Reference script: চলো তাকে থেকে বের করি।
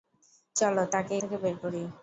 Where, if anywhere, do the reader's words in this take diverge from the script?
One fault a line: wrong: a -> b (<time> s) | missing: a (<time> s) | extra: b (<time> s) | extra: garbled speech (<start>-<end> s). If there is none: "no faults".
no faults